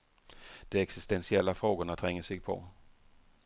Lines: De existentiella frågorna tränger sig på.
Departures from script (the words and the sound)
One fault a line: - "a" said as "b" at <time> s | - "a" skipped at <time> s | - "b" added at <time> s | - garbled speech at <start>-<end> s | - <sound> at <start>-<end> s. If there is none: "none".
none